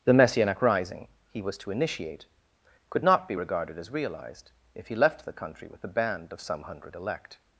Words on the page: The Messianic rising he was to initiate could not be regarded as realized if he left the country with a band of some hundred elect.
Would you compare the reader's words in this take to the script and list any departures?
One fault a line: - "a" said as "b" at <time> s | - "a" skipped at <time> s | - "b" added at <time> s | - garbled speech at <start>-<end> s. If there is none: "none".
none